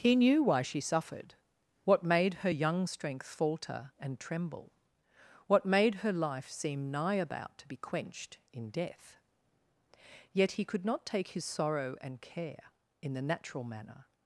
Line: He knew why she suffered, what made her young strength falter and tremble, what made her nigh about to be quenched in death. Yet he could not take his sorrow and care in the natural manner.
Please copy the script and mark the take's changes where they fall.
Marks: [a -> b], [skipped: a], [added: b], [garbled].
He knew why she suffered, what made her young strength falter and tremble, what made her [added: life seem] nigh about to be quenched in death. Yet he could not take his sorrow and care in the natural manner.